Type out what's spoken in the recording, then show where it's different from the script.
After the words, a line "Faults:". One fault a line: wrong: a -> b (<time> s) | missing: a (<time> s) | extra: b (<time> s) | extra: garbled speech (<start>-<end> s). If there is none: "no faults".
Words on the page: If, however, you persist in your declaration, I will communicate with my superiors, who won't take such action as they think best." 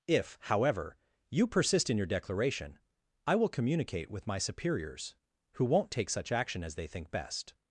If, however, you persist in your declaration, I will communicate with my superiors, who won't take such action as they think best."
Faults:
no faults